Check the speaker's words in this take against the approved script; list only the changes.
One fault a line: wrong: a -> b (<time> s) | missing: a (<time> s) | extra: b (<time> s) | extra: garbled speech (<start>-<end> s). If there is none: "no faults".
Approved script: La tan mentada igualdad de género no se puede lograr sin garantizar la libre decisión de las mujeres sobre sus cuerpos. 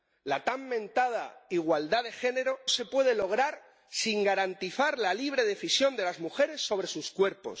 missing: no (2.6 s)